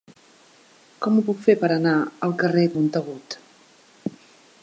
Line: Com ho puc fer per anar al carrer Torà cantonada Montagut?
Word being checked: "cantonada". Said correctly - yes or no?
no